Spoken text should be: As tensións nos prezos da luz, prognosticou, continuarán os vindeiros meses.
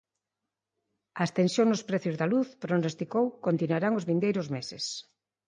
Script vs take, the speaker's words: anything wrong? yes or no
no